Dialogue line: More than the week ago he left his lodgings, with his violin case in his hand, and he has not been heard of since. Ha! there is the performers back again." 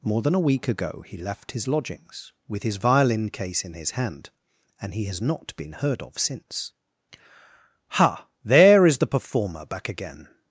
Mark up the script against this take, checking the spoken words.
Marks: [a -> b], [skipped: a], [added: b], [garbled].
More than [the -> a] week ago he left his lodgings, with his violin case in his hand, and he has not been heard of since. Ha! there is the [performers -> performer] back again."